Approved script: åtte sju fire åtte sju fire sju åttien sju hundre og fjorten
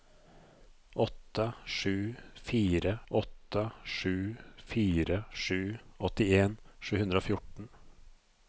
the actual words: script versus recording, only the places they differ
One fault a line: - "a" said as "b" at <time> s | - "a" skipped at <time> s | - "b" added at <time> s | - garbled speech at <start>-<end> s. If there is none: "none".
none